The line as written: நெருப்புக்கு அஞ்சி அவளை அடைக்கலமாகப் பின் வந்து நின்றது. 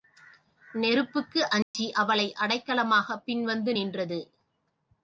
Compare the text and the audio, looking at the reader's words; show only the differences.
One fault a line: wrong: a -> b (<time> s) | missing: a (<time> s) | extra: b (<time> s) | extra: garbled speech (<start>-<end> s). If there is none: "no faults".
no faults